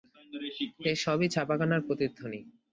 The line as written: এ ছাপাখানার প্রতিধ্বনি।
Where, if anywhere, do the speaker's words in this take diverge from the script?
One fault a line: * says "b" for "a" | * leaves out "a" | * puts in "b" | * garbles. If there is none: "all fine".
* puts in "সবই"